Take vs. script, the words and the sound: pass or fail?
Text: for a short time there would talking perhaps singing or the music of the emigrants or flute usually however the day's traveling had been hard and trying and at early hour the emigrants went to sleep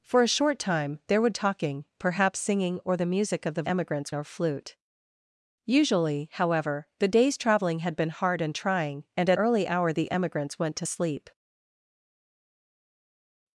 pass